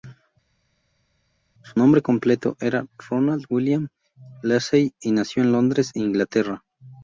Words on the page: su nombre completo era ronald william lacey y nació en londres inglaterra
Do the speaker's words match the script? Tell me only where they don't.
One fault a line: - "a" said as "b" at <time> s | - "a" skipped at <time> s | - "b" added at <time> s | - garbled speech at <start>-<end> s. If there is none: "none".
none